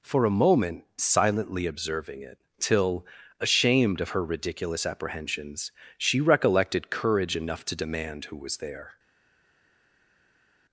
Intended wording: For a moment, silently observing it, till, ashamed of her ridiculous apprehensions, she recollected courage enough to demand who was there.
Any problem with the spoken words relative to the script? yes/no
no